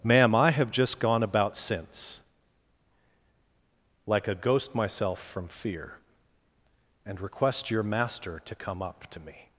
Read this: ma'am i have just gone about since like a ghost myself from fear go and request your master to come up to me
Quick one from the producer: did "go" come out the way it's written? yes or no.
no